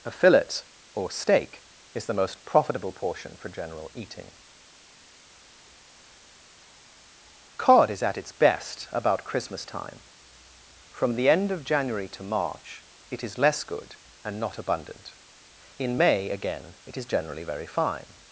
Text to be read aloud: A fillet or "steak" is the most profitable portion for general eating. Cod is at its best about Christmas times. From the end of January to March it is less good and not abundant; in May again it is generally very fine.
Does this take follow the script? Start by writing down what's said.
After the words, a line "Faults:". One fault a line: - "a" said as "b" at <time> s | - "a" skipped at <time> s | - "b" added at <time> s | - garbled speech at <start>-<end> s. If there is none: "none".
A fillet or "steak" is the most profitable portion for general eating. Cod is at its best about Christmas time. From the end of January to March it is less good and not abundant; in May again it is generally very fine.
Faults:
- "times" said as "time" at 9.7 s